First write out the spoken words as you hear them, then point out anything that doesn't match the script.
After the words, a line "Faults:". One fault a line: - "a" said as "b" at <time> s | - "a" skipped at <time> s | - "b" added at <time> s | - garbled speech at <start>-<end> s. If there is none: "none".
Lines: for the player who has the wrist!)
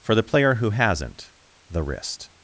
for the player who hasn't the wrist!)
Faults:
- "has" said as "hasn't" at 0.7 s